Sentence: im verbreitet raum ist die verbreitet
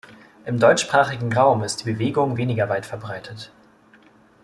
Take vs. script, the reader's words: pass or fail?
fail